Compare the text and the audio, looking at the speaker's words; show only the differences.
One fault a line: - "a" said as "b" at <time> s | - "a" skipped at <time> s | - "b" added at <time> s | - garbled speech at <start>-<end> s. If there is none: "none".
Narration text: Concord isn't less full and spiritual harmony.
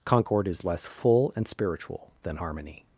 - "isn't" said as "is" at 0.5 s
- "than" added at 2.2 s